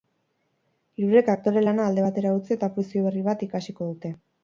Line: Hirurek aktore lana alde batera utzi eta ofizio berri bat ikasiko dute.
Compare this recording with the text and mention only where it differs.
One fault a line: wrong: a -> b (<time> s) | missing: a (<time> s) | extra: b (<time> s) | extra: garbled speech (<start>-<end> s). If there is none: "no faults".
no faults